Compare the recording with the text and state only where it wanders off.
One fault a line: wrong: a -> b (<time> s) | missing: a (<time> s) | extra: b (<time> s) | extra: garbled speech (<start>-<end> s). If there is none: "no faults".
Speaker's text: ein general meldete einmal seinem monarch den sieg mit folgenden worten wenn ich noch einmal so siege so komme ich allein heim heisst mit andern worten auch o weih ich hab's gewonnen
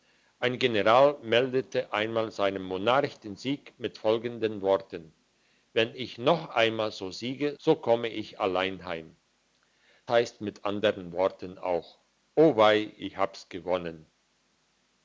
no faults